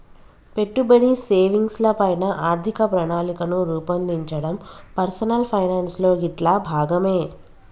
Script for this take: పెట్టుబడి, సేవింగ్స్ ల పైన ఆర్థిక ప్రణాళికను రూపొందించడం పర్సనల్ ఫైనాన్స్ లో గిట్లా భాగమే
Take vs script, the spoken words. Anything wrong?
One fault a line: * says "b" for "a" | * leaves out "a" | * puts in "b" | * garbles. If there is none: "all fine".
all fine